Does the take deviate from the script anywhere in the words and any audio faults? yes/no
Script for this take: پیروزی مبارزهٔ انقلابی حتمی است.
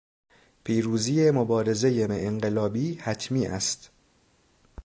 no